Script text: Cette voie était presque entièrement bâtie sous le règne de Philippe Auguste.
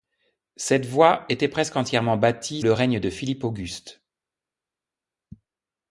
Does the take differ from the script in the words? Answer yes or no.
yes